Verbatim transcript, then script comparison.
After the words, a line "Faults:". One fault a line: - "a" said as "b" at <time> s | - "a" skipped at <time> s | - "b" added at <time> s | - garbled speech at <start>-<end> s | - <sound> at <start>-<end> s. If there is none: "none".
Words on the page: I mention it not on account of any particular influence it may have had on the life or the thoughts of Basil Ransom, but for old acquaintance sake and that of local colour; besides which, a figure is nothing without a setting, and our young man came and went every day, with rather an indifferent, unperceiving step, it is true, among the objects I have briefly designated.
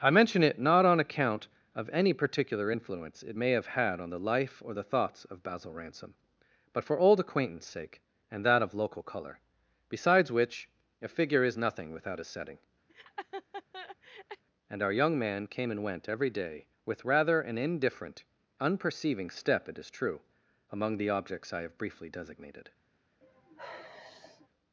I mention it not on account of any particular influence it may have had on the life or the thoughts of Basil Ransom, but for old acquaintance sake and that of local colour; besides which, a figure is nothing without a setting, and our young man came and went every day, with rather an indifferent, unperceiving step, it is true, among the objects I have briefly designated.
Faults:
- laugh at 12.9-14.4 s
- sigh at 23.2-24.5 s